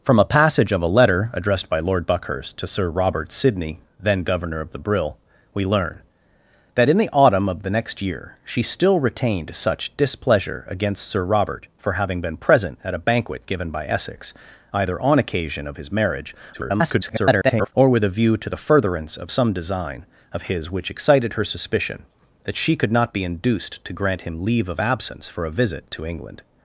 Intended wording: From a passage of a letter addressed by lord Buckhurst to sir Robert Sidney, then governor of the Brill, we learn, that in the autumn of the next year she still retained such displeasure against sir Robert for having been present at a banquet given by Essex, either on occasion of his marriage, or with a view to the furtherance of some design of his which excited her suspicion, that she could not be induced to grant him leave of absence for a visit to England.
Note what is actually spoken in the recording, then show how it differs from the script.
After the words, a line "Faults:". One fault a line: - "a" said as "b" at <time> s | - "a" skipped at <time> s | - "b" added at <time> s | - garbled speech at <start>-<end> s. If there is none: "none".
From a passage of a letter addressed by lord Buckhurst to sir Robert Sidney, then governor of the Brill, we learn, that in the autumn of the next year she still retained such displeasure against sir Robert for having been present at a banquet given by Essex, either on occasion of his marriage, [garbled] or with a view to the furtherance of some design of his which excited her suspicion, that she could not be induced to grant him leave of absence for a visit to England.
Faults:
- garbled speech at 16.5-17.7 s